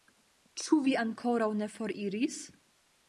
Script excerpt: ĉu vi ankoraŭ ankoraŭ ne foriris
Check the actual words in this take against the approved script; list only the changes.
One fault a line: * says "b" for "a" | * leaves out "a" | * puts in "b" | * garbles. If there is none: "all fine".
* leaves out "ankoraŭ"